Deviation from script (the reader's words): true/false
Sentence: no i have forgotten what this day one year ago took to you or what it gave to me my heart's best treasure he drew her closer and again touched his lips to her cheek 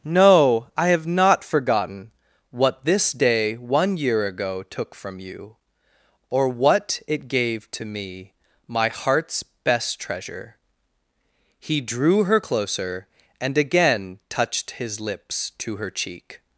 true